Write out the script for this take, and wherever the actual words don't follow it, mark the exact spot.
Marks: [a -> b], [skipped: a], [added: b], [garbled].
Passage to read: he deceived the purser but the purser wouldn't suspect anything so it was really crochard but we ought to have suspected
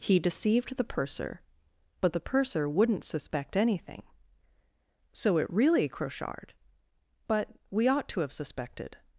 he deceived the purser but the purser wouldn't suspect anything so it [skipped: was] really crochard but we ought to have suspected